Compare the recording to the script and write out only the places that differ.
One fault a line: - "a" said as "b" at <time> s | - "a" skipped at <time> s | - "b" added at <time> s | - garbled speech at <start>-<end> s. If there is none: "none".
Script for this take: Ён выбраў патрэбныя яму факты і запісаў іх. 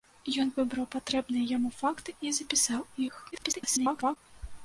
- garbled speech at 3.3-4.2 s